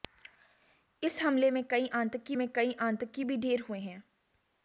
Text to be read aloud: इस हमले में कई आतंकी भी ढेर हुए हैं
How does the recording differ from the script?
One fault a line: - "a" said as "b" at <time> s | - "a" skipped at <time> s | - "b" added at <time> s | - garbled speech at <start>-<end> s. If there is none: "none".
- "में कई आतंकी" added at 2.4 s